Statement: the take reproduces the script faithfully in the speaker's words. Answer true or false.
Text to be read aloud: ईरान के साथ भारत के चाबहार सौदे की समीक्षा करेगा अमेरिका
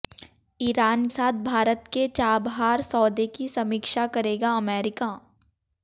false